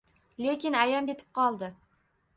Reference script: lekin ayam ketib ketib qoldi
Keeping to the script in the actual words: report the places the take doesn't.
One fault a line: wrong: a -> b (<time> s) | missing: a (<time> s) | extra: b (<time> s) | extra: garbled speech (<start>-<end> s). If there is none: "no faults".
missing: ketib (1.3 s)